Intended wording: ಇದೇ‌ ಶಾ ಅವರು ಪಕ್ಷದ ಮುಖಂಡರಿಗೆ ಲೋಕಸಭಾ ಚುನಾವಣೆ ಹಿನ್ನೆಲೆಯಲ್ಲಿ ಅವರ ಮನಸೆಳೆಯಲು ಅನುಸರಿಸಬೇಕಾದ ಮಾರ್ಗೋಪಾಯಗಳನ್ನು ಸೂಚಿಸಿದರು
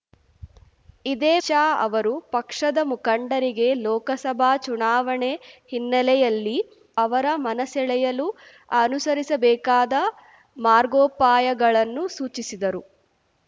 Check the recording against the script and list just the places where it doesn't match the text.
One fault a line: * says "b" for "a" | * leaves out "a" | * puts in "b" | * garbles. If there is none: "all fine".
all fine